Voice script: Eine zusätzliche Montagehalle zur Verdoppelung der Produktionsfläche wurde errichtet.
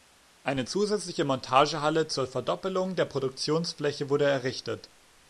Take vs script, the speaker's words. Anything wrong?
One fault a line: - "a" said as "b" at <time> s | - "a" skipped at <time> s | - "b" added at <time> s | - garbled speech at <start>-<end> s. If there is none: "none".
none